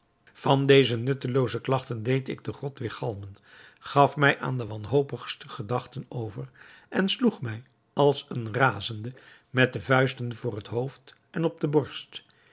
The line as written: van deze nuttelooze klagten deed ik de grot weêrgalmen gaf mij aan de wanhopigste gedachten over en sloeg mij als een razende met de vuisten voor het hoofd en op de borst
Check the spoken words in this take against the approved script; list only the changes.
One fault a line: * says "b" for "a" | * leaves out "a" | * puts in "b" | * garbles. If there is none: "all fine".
all fine